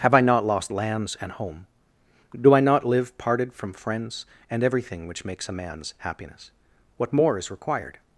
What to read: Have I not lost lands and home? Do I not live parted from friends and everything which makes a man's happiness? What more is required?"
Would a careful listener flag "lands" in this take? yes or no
no